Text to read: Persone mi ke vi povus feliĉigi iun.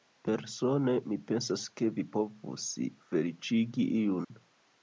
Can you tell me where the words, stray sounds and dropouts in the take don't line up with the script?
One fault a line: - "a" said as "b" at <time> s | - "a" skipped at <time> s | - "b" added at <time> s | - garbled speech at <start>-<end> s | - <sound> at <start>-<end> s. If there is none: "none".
- "pensas" added at 1.3 s
- dropout at 4.2-4.3 s